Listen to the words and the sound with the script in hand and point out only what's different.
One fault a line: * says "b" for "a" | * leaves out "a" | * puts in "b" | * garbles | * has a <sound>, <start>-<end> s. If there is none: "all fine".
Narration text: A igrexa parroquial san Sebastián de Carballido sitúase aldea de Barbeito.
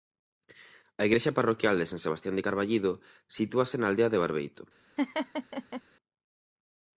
* puts in "de"
* puts in "na"
* has a laugh, 5.0-5.8 s